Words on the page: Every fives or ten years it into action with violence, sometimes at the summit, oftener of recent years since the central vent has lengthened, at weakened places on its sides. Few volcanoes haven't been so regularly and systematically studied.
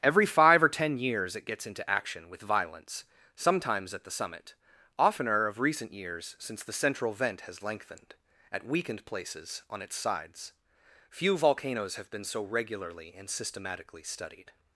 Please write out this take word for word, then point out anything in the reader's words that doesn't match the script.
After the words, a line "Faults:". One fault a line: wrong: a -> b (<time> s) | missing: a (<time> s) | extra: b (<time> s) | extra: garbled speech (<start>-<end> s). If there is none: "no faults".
Every five or ten years it gets into action with violence, sometimes at the summit, oftener of recent years since the central vent has lengthened, at weakened places on its sides. Few volcanoes have been so regularly and systematically studied.
Faults:
wrong: fives -> five (0.2 s)
extra: gets (1.4 s)
wrong: haven't -> have (12.0 s)